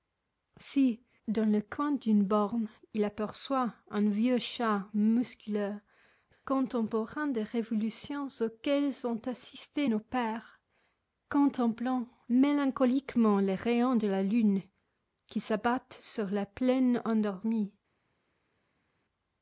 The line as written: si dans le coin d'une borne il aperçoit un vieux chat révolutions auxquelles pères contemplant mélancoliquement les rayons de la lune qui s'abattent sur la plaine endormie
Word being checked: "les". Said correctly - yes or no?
yes